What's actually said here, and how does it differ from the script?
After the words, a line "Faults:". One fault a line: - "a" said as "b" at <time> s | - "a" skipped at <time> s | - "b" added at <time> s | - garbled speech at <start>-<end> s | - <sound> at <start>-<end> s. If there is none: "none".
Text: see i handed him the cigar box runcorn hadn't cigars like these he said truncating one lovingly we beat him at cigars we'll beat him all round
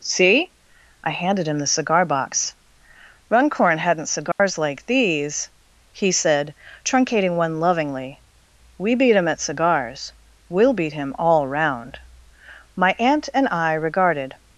see i handed him the cigar box runcorn hadn't cigars like these he said truncating one lovingly we beat him at cigars we'll beat him all round my aunt and i regarded
Faults:
- dropout at 4.3-4.4 s
- "my aunt and i regarded" added at 12.8 s